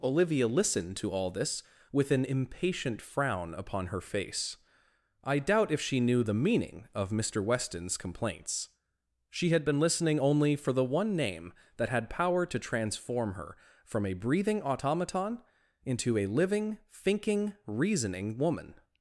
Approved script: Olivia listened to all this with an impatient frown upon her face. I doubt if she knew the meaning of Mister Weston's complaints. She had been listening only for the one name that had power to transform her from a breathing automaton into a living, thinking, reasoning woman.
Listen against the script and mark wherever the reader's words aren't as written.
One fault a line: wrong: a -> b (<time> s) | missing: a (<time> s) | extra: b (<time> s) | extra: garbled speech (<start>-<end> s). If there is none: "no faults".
no faults